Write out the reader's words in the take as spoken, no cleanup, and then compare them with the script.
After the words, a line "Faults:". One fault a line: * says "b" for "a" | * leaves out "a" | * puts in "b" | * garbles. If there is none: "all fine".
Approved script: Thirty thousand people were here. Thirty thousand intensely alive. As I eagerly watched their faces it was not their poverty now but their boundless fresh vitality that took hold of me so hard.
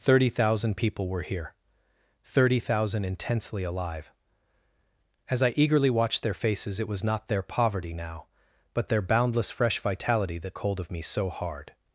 Thirty thousand people were here. Thirty thousand intensely alive. As I eagerly watched their faces it was not their poverty now but their boundless fresh vitality that hold of me so hard.
Faults:
* leaves out "took"